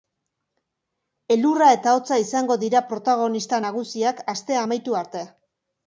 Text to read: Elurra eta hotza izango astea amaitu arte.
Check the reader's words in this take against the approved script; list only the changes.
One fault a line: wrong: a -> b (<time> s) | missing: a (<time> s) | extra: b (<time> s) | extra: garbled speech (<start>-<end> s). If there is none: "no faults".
extra: dira protagonista nagusiak (2.6 s)